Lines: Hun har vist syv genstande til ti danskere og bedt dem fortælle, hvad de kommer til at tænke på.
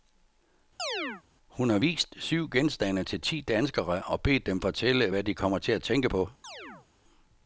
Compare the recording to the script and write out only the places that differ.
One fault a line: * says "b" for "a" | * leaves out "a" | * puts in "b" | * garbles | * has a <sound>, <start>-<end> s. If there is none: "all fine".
* has a chirp, 0.8-1.2 s
* has a chirp, 6.4-6.9 s